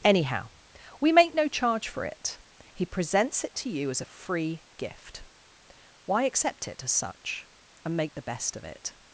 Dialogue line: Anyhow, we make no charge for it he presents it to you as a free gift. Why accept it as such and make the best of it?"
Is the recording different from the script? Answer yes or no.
no